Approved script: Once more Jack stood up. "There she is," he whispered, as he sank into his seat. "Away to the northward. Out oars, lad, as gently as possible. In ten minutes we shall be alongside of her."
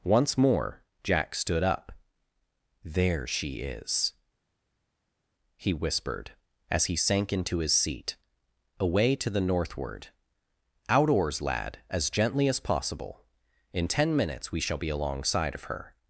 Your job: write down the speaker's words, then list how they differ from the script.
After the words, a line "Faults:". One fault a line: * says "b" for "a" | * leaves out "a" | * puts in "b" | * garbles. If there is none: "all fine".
Once more Jack stood up. "There she is," he whispered, as he sank into his seat. "Away to the northward. Out oars, lad, as gently as possible. In ten minutes we shall be alongside of her."
Faults:
all fine